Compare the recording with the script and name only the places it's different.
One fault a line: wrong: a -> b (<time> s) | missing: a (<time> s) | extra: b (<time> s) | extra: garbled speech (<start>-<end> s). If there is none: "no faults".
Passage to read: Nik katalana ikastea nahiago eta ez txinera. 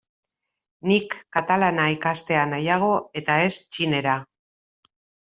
no faults